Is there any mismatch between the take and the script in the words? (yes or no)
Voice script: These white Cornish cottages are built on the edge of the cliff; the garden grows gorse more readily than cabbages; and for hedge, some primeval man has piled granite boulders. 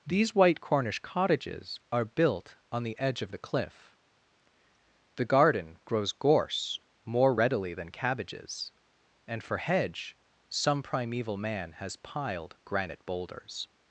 no